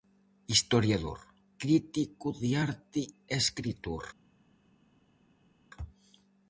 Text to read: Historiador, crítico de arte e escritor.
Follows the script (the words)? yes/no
yes